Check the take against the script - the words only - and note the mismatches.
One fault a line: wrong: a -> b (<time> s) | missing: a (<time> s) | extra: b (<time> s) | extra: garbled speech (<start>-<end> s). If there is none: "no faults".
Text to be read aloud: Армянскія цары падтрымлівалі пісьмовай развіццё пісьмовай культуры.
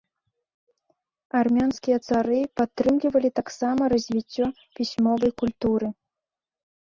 wrong: пісьмовай -> таксама (3.4 s)